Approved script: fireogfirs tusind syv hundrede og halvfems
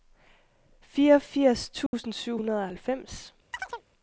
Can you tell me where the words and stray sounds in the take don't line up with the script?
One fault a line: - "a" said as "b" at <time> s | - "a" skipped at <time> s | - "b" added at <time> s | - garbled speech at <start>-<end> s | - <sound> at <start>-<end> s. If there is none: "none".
- dropout at 1.9-1.9 s
- chirp at 3.5-3.8 s